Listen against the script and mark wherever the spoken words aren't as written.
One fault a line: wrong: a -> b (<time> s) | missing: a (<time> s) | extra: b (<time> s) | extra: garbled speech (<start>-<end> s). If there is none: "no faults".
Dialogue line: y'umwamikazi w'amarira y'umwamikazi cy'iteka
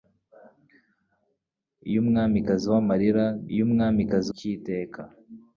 no faults